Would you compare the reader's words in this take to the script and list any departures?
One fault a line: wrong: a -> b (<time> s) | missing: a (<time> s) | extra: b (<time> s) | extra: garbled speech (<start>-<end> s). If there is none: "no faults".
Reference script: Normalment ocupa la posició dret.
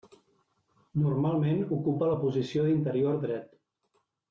extra: d'interior (2.7 s)